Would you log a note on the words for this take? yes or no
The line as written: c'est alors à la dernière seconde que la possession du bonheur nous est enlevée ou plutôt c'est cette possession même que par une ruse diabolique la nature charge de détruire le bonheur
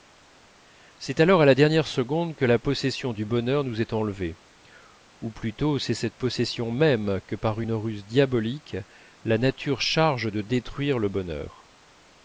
no